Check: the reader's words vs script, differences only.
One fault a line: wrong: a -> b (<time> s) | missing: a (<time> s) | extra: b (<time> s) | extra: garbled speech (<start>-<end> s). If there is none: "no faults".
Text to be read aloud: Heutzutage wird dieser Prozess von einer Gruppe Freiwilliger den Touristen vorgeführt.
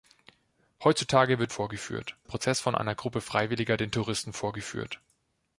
wrong: dieser -> vorgeführt (1.5 s)